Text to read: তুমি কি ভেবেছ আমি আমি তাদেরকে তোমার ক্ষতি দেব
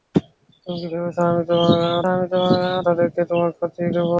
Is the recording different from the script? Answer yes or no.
no